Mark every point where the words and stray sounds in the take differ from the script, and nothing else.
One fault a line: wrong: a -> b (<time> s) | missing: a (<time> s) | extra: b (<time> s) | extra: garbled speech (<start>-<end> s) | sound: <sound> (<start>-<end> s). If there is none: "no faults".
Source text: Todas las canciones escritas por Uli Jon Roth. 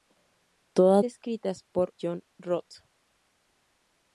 missing: las canciones (1.1 s)
missing: Uli (1.9 s)